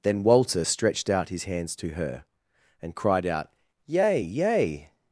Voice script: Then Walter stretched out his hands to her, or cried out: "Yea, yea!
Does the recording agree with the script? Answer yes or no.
no